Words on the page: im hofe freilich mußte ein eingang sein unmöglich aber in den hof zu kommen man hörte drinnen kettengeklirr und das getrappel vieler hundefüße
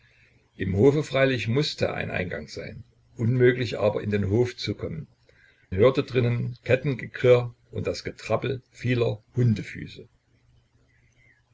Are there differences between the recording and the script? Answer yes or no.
yes